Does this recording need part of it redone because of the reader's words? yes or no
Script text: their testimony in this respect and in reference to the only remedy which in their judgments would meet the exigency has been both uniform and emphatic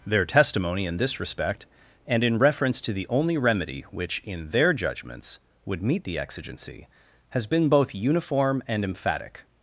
no